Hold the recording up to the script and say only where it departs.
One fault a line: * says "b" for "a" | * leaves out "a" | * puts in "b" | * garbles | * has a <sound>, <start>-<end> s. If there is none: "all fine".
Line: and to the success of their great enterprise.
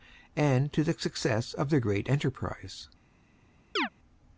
* has a chirp, 3.8-3.9 s